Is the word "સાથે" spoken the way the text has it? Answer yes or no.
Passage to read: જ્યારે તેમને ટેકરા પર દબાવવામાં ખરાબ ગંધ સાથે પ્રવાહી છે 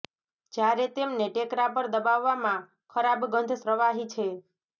no